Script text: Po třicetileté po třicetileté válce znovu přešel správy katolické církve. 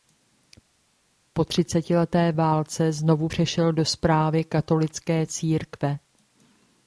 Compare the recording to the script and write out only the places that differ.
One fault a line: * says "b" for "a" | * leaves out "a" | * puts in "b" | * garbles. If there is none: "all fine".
* leaves out "po třicetileté"
* puts in "do"